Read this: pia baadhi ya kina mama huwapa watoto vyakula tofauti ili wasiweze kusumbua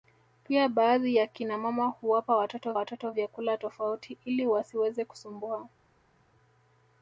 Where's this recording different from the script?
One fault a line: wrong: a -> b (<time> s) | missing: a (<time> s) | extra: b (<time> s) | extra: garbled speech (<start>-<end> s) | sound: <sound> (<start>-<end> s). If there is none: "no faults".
extra: watoto (2.7 s)